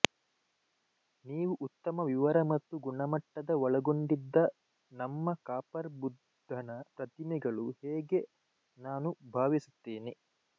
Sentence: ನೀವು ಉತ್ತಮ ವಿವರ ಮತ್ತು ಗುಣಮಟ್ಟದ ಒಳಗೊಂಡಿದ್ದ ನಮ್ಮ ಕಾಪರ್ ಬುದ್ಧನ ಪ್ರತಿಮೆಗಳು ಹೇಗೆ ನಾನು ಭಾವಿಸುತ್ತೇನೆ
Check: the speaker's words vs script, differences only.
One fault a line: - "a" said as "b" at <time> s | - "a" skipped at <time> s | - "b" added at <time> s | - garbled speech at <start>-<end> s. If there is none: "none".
none